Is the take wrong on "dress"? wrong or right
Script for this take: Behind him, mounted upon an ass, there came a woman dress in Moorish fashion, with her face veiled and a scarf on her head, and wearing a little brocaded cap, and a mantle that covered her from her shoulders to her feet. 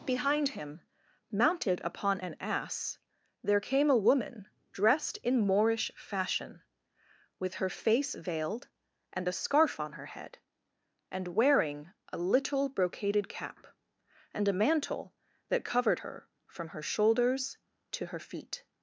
wrong